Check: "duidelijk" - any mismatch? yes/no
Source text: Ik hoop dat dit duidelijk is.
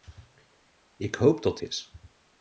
yes